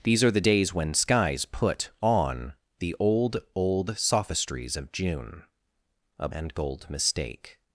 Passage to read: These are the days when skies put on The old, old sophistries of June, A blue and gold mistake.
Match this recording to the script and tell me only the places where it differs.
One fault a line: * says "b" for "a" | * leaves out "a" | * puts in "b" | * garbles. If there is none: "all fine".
* leaves out "blue"